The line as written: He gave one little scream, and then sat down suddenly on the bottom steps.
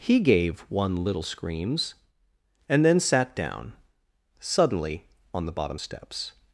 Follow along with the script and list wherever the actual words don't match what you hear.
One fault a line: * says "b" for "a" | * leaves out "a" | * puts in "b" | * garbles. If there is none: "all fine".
* says "screams" for "scream"